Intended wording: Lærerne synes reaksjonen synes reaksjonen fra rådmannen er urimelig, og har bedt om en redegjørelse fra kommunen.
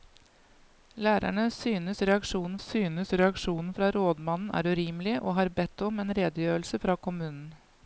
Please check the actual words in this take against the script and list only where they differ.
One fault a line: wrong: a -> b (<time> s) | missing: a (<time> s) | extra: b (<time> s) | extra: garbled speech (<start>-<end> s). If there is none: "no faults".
no faults